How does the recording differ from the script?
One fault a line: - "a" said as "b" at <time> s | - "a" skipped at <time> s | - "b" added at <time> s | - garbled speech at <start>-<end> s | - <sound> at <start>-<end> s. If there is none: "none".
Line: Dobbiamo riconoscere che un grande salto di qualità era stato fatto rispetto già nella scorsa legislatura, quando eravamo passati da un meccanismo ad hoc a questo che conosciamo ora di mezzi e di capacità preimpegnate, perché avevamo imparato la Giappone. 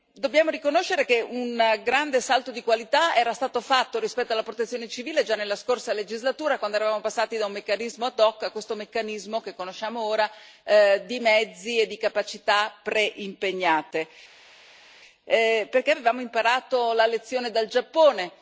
- "alla Protezione civile" added at 4.3 s
- "meccanismo" added at 8.8 s
- "lezione dal" added at 17.1 s